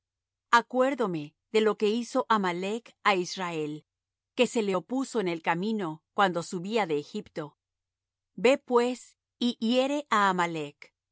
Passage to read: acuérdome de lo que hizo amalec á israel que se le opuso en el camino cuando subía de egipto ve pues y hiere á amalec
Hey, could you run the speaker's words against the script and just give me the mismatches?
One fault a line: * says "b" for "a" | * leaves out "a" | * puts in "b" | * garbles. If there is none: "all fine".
all fine